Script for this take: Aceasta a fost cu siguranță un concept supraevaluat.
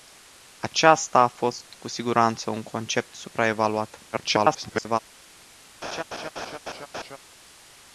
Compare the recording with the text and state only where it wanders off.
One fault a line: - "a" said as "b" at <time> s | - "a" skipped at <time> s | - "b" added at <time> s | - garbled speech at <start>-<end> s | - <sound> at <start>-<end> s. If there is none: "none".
- garbled speech at 4.1-5.0 s
- laugh at 5.8-7.2 s